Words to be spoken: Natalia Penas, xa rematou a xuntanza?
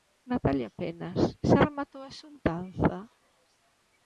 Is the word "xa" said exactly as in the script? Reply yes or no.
yes